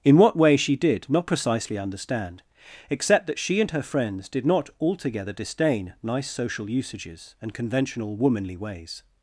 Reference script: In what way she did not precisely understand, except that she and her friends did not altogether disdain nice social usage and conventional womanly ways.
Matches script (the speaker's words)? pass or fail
fail